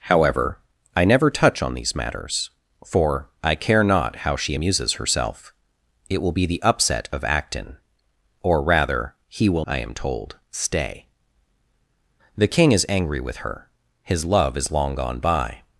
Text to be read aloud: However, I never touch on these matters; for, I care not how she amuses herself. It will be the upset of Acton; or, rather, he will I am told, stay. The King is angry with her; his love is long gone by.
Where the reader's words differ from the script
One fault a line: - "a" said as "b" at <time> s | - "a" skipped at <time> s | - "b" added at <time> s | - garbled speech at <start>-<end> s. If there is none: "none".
none